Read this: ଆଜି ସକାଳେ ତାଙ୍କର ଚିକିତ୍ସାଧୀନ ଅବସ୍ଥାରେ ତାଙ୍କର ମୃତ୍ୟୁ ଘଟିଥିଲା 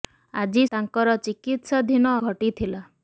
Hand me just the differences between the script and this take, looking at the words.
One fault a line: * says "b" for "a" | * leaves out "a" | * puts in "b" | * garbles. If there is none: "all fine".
* leaves out "ସକାଳେ"
* leaves out "ଅବସ୍ଥାରେ ତାଙ୍କର ମୃତ୍ୟୁ"